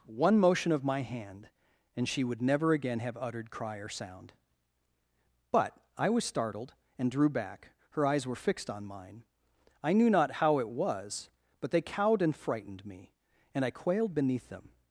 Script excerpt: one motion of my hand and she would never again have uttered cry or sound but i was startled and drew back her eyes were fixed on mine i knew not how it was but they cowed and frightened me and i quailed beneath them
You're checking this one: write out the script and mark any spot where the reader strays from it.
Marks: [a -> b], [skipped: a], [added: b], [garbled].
one motion of my hand and she would never again have uttered cry or sound but i was startled and drew back her eyes were fixed on mine i knew not how it was but they cowed and frightened me and i quailed beneath them